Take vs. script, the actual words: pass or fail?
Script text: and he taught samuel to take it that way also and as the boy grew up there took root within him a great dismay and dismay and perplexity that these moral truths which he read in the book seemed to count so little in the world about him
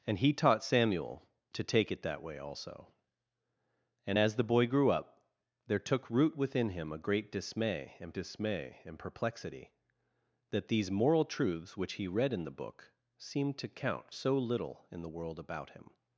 pass